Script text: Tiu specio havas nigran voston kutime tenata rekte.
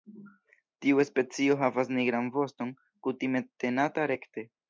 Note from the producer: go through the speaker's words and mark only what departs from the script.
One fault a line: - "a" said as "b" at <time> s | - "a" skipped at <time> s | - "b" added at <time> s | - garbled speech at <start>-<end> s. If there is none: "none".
none